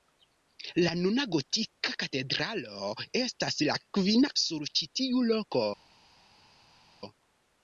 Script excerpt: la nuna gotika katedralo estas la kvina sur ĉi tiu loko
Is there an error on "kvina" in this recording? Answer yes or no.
no